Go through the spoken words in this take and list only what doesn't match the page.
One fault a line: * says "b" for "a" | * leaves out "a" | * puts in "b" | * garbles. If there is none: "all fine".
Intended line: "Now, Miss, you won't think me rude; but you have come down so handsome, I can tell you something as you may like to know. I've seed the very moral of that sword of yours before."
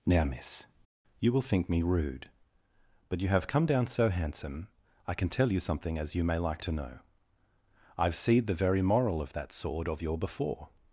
* says "will" for "won't"
* says "your" for "yours"